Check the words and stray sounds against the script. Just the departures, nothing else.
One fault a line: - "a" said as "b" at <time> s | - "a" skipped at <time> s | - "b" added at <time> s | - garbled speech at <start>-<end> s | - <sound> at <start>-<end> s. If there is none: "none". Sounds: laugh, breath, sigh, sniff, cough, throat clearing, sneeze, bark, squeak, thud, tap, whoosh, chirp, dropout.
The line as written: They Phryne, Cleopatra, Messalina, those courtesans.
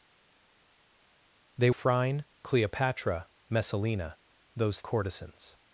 none